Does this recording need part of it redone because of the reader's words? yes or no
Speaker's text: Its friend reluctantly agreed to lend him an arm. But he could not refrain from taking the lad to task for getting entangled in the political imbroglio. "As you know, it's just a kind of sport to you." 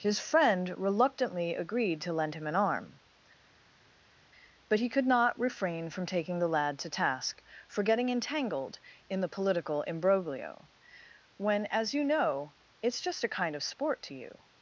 yes